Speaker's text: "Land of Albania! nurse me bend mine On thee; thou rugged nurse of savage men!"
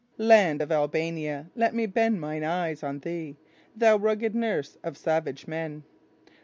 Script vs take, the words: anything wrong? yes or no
yes